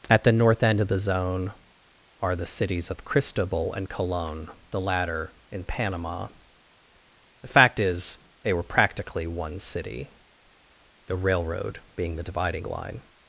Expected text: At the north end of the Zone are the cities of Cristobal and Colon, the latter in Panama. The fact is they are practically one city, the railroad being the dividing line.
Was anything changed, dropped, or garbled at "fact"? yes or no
no